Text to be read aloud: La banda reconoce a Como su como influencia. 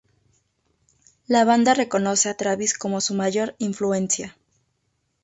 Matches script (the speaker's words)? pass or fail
fail